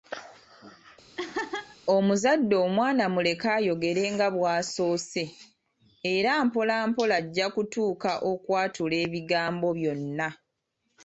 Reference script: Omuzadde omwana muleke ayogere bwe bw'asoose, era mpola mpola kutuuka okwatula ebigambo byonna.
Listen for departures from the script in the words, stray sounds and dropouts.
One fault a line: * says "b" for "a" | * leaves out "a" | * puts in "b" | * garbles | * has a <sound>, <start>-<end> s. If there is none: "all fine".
* has a laugh, 1.2-1.8 s
* says "nga" for "bwe"
* puts in "ajja"